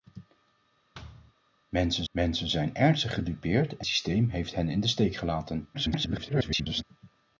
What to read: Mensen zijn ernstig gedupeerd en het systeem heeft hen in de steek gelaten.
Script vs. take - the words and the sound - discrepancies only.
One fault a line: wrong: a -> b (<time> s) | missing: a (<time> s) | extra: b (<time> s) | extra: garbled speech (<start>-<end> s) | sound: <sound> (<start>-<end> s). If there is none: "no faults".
sound: thud (0.9-1.3 s)
extra: mensen (2.1 s)
missing: het (3.9 s)
extra: garbled speech (5.7-6.8 s)